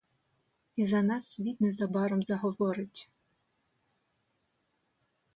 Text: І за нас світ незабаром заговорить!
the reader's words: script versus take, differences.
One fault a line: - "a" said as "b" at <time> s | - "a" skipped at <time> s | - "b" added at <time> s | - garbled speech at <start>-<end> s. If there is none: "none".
none